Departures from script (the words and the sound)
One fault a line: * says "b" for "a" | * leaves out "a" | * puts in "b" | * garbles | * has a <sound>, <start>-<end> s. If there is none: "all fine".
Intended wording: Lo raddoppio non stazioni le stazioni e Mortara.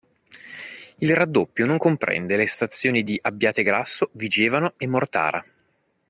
* says "Il" for "Lo"
* says "comprende" for "stazioni"
* puts in "di Abbiategrasso Vigevano"